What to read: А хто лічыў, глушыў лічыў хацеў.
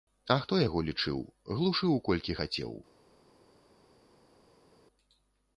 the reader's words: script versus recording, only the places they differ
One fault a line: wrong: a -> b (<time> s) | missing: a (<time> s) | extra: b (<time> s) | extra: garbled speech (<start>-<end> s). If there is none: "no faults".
extra: яго (0.7 s)
wrong: лічыў -> колькі (2.1 s)